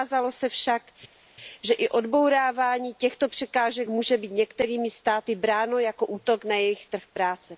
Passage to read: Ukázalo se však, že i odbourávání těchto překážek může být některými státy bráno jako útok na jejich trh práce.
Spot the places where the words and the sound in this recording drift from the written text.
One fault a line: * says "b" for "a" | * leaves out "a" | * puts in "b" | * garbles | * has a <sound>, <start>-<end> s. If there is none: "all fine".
all fine